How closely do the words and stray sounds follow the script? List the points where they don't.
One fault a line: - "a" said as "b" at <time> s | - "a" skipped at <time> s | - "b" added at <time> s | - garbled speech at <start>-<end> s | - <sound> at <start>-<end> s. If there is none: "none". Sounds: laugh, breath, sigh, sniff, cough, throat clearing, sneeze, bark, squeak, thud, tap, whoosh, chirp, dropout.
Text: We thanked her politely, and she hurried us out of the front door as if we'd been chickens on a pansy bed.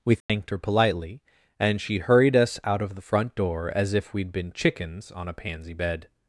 - dropout at 0.2-0.3 s